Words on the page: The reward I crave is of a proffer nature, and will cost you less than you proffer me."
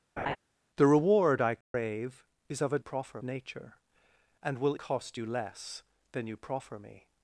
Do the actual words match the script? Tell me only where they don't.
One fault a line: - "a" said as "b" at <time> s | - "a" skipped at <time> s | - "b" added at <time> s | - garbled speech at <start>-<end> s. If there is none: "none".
none